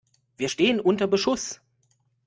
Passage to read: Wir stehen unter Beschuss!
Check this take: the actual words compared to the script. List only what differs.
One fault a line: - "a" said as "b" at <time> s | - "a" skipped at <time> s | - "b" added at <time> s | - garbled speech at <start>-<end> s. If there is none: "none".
none